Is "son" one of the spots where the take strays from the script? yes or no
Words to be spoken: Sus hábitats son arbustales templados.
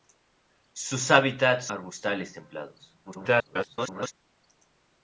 yes